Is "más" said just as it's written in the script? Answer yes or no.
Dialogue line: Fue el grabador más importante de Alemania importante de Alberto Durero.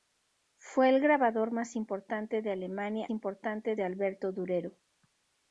yes